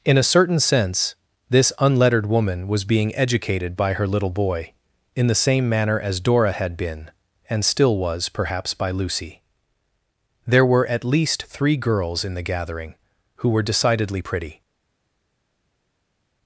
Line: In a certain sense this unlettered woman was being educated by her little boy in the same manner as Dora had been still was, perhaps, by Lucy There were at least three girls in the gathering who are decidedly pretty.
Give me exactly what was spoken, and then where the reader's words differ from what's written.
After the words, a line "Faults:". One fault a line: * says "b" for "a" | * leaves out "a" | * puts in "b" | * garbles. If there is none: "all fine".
In a certain sense this unlettered woman was being educated by her little boy in the same manner as Dora had been and still was, perhaps, by Lucy There were at least three girls in the gathering who were decidedly pretty.
Faults:
* puts in "and"
* says "were" for "are"